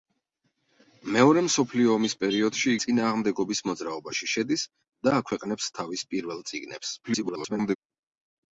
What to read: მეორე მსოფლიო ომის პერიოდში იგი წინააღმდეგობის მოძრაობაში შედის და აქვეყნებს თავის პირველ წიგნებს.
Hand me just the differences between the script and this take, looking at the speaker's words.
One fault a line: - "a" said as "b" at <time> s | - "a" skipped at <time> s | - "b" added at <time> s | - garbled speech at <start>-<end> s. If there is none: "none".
- "იგი" skipped at 2.7 s
- garbled speech at 7.0-7.8 s